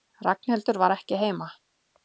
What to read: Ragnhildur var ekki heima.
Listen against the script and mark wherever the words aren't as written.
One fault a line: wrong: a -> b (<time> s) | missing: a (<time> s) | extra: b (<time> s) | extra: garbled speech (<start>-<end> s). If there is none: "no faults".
no faults